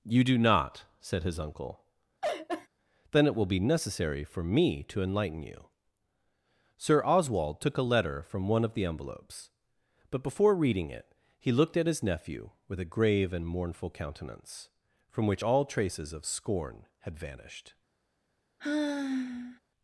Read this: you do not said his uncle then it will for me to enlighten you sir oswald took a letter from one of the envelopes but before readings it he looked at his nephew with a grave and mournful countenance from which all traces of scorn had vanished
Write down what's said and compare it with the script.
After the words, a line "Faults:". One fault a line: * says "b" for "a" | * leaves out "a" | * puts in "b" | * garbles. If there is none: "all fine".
you do not said his uncle then it will be necessary for me to enlighten you sir oswald took a letter from one of the envelopes but before reading it he looked at his nephew with a grave and mournful countenance from which all traces of scorn had vanished
Faults:
* puts in "be necessary"
* says "reading" for "readings"